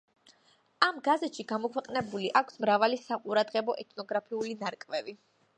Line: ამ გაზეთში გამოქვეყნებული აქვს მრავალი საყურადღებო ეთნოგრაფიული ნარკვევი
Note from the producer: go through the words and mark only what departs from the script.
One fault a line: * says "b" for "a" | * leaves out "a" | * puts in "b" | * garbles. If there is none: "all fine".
all fine